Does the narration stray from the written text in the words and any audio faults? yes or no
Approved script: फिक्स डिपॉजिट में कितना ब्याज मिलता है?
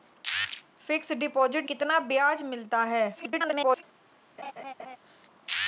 yes